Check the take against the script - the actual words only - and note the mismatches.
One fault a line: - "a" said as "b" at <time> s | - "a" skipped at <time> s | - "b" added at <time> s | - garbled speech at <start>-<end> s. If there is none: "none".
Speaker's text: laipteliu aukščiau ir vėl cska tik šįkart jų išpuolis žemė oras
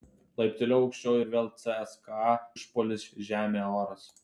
- "tik šįkart jų" skipped at 2.3 s